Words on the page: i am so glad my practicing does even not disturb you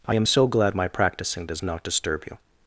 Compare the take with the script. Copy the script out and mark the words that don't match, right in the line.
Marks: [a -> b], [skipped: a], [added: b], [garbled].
i am so glad my practicing does [skipped: even] not disturb you